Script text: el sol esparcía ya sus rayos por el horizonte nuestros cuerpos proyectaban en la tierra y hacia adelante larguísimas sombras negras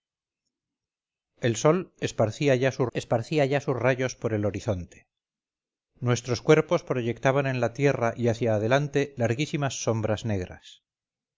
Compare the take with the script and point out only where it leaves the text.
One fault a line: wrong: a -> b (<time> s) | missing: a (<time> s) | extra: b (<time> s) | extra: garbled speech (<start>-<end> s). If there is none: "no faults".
extra: esparcía ya sus (2.9 s)